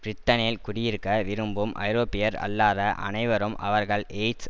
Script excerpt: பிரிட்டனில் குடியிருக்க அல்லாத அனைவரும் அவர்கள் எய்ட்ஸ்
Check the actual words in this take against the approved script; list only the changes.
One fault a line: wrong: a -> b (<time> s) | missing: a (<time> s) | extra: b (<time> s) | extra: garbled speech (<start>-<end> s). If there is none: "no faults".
extra: விரும்பும் ஐரோப்பியர் (1.2 s)